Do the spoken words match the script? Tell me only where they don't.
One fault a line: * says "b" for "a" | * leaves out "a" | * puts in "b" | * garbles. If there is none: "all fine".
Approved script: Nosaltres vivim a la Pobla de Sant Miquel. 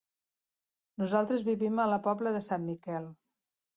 all fine